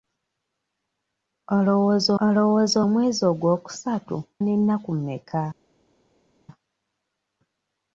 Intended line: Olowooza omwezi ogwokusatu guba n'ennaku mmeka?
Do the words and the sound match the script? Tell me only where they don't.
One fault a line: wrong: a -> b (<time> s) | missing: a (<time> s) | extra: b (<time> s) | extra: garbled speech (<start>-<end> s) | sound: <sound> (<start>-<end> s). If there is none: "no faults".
extra: olowooza (2.2 s)
missing: guba (4.2 s)